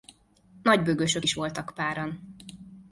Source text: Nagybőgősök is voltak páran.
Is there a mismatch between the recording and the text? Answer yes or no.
no